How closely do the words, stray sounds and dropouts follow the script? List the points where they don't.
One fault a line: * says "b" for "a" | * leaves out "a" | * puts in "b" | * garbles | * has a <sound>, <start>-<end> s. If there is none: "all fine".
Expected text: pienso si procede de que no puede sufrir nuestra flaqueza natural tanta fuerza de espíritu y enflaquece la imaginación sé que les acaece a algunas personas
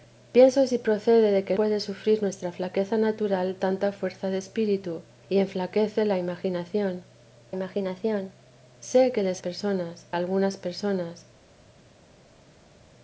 * leaves out "no"
* puts in "imaginación"
* says "personas" for "acaece"